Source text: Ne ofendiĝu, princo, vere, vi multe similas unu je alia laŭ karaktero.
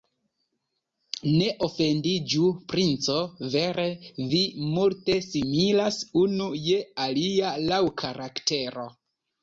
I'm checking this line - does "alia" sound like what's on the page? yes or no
yes